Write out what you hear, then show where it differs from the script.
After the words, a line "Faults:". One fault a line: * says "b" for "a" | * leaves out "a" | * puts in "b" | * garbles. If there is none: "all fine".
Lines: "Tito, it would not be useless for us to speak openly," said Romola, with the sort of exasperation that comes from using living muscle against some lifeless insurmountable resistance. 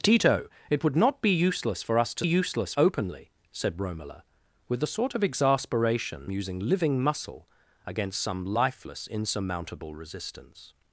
"Tito, it would not be useless for us to useless openly," said Romola, with the sort of exasperation using living muscle against some lifeless insurmountable resistance.
Faults:
* says "useless" for "speak"
* leaves out "that comes from"